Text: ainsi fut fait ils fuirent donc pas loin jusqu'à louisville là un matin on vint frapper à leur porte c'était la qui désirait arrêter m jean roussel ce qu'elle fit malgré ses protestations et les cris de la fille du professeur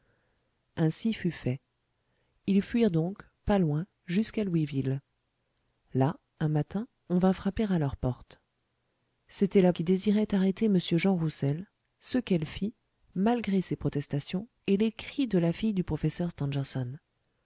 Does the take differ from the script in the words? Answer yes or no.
no